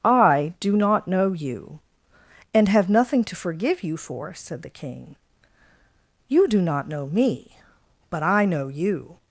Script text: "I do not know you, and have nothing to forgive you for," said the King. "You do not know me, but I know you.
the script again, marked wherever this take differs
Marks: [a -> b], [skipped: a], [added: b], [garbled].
"I do not know you, and have nothing to forgive you for," said the King. "You do not know me, but I know you.